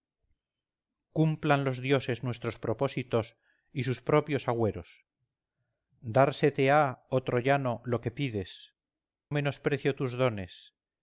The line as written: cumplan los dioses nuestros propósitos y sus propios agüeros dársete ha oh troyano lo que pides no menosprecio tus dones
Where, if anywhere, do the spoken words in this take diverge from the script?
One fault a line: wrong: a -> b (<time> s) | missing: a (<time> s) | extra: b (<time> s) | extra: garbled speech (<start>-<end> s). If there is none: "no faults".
missing: no (8.7 s)